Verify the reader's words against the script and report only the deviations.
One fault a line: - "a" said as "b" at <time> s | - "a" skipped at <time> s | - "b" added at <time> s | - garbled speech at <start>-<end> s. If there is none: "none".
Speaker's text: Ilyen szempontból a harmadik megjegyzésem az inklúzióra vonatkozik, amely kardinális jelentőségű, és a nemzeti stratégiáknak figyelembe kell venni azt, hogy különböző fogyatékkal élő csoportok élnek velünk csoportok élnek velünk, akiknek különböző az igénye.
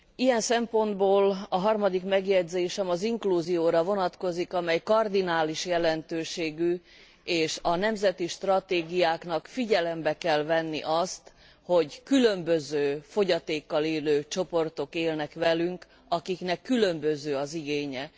- "csoportok élnek velünk" skipped at 15.9 s